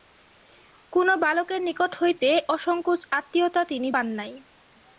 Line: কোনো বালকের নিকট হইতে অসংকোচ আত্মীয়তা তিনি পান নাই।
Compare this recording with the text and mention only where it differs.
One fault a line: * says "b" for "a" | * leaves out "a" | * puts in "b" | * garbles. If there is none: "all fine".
all fine